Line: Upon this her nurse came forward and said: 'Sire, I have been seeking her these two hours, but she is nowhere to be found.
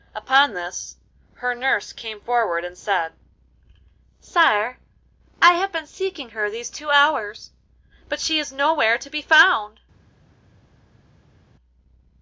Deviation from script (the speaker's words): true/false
false